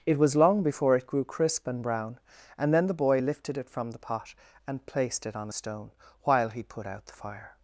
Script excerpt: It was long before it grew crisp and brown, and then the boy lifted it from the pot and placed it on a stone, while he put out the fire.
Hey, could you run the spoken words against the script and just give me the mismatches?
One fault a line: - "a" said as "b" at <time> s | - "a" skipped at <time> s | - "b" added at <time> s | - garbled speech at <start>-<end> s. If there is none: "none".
none